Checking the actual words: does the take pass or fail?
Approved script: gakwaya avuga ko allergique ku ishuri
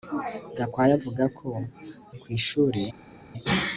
fail